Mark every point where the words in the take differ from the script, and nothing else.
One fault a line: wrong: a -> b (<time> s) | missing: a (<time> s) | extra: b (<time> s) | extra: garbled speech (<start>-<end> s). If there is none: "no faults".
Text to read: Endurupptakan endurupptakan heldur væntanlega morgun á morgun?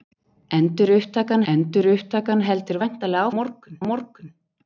no faults